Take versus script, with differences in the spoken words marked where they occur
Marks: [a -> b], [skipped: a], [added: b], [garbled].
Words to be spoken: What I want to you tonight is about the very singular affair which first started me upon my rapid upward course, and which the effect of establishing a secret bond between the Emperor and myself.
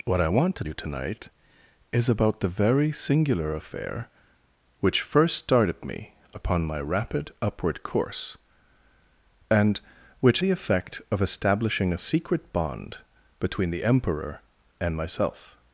What I want to you tonight is about the very singular affair which first started me upon my rapid upward course, and which the effect of establishing a secret bond between the Emperor and myself.